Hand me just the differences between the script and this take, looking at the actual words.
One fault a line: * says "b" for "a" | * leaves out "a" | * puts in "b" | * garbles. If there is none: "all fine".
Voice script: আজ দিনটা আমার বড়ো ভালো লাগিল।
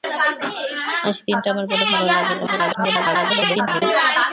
* garbles